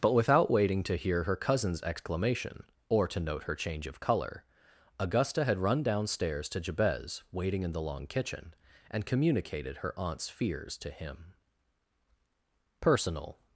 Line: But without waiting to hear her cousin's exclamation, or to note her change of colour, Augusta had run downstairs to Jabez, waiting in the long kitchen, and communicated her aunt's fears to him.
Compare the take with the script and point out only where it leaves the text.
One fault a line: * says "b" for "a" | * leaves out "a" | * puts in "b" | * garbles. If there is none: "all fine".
* puts in "Personal"